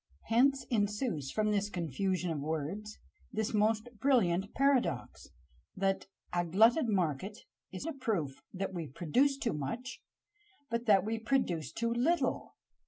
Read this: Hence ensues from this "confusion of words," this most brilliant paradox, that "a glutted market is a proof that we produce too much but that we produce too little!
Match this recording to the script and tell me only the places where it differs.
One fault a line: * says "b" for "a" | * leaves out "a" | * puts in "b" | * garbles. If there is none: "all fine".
all fine